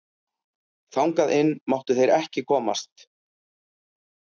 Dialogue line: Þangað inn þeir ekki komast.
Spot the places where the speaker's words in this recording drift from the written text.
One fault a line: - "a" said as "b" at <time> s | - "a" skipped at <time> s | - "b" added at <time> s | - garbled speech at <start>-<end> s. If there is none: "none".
- "máttu" added at 1.8 s